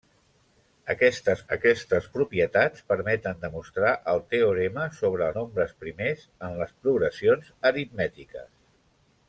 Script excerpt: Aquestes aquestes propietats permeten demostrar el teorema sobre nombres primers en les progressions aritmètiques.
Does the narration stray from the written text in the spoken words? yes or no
no